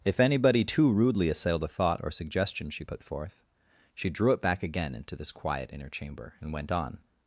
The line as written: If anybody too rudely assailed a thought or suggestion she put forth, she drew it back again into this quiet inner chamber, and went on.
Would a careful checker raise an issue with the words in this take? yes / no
no